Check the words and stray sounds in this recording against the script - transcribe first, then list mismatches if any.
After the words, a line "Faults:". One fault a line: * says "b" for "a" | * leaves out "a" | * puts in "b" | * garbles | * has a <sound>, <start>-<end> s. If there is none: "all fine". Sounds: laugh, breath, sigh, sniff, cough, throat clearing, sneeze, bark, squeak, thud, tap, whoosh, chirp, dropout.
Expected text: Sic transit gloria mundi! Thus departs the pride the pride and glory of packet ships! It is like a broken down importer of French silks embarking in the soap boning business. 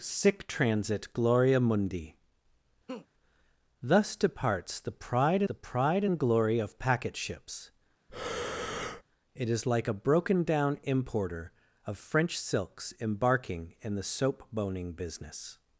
Sic transit gloria mundi! Thus departs the pride the pride and glory of packet ships! It is like a broken down importer of French silks embarking in the soap boning business.
Faults:
* has a laugh, 2.9-3.1 s
* has a breath, 8.1-9.0 s